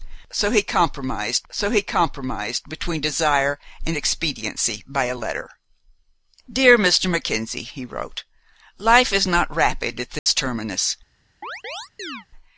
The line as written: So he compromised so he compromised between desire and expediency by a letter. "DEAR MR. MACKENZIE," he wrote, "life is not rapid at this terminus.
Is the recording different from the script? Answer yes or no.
no